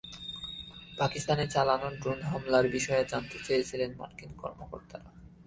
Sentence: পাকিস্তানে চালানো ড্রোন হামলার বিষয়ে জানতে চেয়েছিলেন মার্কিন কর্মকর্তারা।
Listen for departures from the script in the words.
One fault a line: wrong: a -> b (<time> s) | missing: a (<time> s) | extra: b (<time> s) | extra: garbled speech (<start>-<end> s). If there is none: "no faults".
no faults